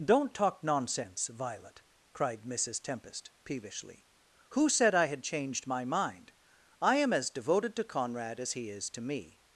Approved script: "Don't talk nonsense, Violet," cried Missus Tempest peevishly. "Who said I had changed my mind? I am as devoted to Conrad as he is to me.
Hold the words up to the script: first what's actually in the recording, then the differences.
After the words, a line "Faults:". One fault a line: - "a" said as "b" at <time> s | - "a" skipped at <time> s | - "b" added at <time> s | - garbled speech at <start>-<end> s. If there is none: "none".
"Don't talk nonsense, Violet," cried Missus Tempest peevishly. "Who said I had changed my mind? I am as devoted to Conrad as he is to me.
Faults:
none